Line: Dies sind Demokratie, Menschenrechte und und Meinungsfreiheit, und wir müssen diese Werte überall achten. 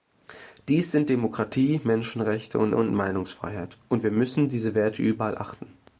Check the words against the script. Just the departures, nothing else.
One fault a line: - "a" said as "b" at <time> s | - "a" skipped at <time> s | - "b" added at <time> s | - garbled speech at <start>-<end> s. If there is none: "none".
none